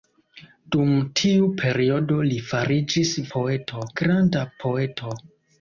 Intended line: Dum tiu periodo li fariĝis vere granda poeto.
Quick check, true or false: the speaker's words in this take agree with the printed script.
false